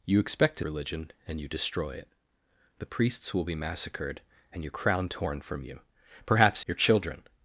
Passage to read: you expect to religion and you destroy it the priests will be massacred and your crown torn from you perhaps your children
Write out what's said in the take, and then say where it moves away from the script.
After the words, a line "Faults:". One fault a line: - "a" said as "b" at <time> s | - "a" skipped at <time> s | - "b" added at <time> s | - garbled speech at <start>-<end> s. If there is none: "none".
you expect to religion and you destroy it the priests will be massacred and your crown torn from you perhaps your children
Faults:
none